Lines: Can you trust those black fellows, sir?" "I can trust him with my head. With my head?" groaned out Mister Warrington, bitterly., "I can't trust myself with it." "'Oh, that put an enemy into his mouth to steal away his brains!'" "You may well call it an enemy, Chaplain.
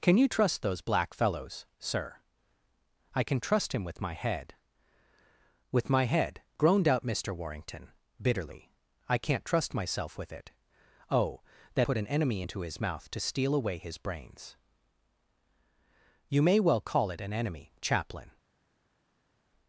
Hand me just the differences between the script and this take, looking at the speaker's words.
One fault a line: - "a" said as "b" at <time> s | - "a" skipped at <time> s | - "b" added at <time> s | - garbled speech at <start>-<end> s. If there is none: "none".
none